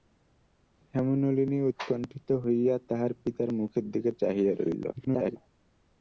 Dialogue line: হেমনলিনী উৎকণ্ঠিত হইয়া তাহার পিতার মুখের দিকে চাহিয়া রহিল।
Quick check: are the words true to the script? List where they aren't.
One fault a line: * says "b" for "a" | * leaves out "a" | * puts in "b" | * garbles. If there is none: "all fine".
* garbles